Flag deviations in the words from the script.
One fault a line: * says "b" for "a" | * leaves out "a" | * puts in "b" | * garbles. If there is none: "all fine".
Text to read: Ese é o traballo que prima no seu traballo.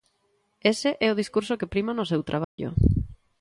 * says "discurso" for "traballo"